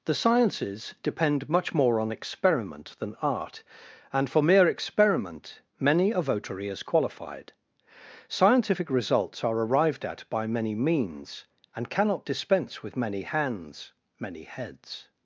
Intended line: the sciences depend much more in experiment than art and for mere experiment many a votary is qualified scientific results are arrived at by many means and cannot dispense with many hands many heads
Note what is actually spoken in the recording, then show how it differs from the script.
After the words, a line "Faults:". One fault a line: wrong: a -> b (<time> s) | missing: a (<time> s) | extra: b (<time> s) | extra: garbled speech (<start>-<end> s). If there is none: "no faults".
the sciences depend much more on experiment than art and for mere experiment many a votary is qualified scientific results are arrived at by many means and cannot dispense with many hands many heads
Faults:
wrong: in -> on (2.0 s)